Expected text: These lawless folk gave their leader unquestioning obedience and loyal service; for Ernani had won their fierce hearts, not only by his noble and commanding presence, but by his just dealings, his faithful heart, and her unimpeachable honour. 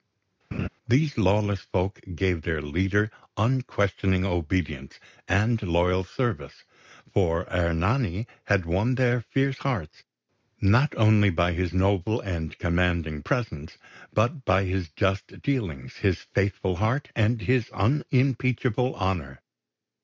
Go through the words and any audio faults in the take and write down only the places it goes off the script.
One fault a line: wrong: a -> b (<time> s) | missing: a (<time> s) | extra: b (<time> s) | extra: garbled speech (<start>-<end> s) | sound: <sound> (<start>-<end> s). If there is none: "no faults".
sound: laugh (0.5-0.7 s)
wrong: her -> his (17.4 s)